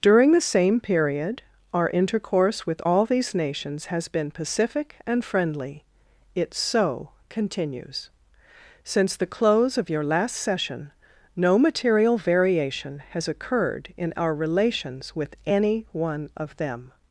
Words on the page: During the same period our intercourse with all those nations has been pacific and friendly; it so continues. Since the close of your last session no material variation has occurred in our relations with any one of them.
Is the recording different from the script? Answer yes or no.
yes